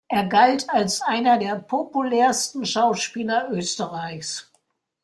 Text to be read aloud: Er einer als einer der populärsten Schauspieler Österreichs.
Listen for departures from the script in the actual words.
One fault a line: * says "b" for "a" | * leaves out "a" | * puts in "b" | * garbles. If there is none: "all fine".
* says "galt" for "einer"